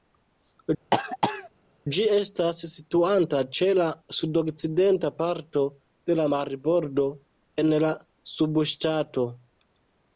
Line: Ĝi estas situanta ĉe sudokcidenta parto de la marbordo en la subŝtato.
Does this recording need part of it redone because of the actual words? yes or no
yes